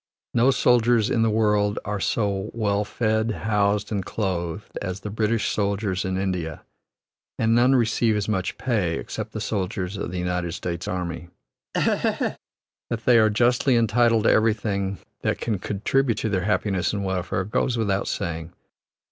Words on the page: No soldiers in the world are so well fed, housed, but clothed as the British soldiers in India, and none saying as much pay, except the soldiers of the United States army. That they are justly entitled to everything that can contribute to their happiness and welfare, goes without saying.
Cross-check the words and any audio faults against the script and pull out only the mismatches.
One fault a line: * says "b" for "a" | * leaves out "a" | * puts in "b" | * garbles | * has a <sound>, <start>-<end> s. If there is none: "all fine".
* says "and" for "but"
* says "receive" for "saying"
* has a laugh, 11.7-12.4 s